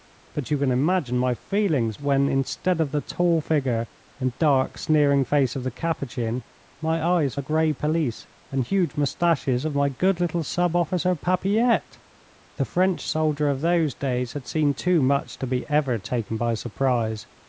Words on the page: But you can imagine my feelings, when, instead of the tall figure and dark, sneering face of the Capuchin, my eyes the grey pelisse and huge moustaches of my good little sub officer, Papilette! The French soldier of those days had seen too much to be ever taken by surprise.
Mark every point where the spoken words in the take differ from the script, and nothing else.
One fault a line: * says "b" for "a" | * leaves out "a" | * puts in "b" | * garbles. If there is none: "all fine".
all fine